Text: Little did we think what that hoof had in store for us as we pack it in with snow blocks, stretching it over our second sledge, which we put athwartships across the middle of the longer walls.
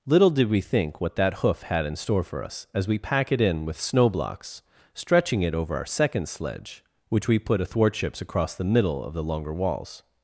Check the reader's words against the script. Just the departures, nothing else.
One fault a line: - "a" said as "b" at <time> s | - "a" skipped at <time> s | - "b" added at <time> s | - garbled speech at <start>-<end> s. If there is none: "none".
none